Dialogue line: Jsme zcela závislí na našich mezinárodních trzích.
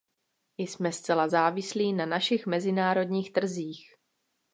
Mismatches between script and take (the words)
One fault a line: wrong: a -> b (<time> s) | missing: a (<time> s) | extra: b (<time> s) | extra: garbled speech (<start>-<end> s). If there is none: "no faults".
no faults